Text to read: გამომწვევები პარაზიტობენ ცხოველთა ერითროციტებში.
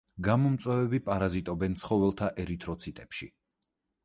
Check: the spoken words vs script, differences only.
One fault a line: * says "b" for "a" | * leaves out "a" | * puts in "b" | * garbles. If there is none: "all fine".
all fine